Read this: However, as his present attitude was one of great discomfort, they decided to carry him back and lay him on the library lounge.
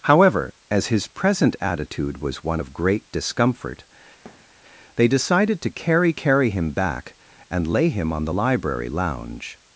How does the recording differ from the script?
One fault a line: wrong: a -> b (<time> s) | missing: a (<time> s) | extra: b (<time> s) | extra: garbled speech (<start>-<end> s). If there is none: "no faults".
extra: carry (6.1 s)